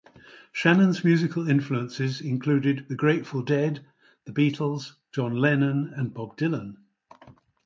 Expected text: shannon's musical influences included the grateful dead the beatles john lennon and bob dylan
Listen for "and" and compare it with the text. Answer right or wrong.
right